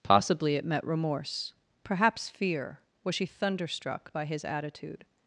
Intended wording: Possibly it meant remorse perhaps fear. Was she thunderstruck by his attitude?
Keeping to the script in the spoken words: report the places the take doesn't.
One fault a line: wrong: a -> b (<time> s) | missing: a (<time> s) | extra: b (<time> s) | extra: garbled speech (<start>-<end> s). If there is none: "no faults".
wrong: meant -> met (0.7 s)